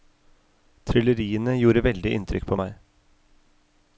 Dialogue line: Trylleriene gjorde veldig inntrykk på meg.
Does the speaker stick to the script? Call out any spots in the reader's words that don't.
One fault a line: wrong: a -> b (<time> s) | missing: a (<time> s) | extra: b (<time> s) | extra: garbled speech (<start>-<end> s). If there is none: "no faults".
no faults